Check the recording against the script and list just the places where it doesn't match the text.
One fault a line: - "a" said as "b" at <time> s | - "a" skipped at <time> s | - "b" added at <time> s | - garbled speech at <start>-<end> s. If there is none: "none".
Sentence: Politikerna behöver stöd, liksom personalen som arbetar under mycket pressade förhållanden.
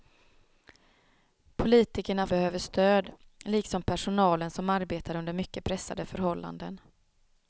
none